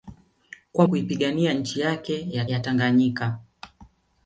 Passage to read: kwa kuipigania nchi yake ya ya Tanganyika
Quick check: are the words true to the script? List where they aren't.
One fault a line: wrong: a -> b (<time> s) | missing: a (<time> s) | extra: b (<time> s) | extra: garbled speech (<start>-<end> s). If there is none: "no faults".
no faults